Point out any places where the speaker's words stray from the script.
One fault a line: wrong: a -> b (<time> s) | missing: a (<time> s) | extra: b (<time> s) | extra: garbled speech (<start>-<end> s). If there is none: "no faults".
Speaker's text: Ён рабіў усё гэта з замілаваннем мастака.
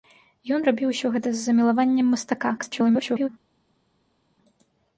extra: garbled speech (2.6-3.3 s)